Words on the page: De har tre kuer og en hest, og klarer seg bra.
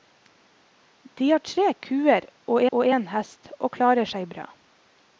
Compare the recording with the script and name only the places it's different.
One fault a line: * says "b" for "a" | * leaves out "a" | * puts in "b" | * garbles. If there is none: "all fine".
* puts in "og"